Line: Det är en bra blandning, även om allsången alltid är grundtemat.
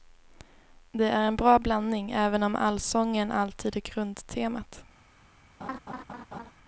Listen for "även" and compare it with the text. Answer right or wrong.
right